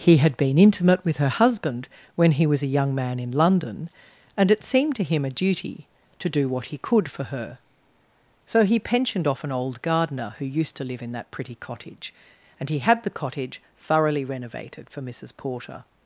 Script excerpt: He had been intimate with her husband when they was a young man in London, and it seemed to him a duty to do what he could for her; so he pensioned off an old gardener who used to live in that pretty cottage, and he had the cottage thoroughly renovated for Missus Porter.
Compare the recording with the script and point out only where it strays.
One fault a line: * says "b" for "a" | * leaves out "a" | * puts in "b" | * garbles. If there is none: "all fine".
* says "he" for "they"